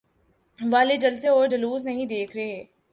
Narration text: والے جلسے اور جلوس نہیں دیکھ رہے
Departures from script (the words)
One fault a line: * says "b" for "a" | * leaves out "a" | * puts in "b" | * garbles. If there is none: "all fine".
all fine